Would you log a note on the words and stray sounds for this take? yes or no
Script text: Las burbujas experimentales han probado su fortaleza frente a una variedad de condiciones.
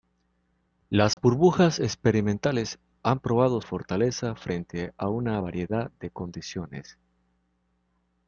yes